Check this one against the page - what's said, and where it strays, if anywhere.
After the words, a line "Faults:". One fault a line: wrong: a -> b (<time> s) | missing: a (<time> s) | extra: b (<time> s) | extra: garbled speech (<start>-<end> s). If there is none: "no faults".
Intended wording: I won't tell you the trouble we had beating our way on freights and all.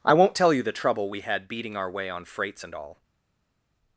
I won't tell you the trouble we had beating our way on freights and all.
Faults:
no faults